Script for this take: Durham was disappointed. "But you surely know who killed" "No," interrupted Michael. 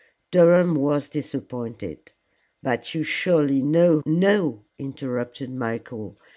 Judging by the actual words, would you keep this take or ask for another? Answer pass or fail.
fail